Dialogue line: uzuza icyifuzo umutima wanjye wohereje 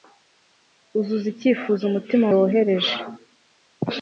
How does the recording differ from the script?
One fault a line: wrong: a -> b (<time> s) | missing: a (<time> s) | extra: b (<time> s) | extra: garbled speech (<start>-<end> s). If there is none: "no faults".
missing: wanjye (2.2 s)